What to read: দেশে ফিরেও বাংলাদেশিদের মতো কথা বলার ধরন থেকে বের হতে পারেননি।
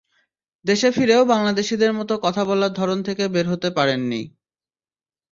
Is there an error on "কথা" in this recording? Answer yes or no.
no